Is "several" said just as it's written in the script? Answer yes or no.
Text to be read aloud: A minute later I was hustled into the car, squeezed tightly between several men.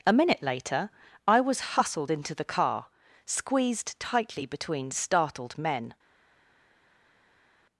no